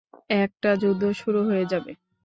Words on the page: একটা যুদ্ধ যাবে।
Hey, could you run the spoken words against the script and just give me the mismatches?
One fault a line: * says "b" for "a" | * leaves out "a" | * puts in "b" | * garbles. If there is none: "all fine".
* puts in "শুরু হয়ে"